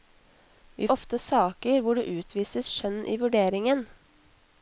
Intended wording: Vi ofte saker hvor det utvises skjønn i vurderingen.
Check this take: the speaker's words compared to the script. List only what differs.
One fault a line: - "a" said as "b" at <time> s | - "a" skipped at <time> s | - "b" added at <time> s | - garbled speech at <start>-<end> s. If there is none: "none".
none